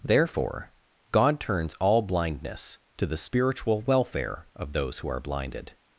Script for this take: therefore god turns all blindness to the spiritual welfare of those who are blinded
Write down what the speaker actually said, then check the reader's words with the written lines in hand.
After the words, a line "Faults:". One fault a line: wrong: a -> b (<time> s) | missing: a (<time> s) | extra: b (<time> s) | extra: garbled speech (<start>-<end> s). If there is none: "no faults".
therefore god turns all blindness to the spiritual welfare of those who are blinded
Faults:
no faults